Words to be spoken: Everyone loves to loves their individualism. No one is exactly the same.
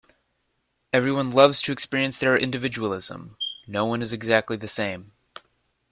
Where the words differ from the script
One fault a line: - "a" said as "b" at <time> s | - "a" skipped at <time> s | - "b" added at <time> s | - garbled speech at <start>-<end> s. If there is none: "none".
- "loves" said as "experience" at 1.7 s